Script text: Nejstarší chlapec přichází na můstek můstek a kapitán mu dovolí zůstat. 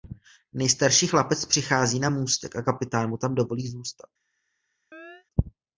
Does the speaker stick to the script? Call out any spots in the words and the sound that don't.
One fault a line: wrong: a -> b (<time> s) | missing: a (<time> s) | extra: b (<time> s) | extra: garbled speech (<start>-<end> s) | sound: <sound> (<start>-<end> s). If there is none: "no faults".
missing: můstek (2.6 s)
extra: tam (3.2 s)
sound: chirp (4.9-5.3 s)